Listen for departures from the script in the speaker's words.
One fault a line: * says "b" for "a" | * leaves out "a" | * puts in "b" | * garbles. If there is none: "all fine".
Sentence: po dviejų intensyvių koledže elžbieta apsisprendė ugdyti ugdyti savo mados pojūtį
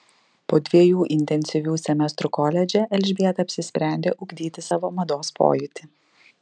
* puts in "semestrų"
* leaves out "ugdyti"